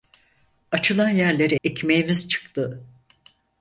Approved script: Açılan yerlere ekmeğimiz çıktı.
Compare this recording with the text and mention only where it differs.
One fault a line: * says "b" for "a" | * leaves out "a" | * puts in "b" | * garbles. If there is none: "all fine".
all fine